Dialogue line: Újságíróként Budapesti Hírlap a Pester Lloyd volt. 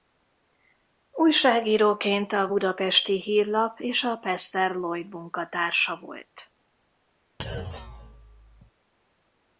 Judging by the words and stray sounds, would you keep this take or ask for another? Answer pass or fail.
fail